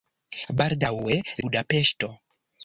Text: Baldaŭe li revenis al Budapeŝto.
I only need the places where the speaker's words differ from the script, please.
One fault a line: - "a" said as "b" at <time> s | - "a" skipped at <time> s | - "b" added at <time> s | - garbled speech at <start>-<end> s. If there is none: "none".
- "li revenis al" skipped at 1.2 s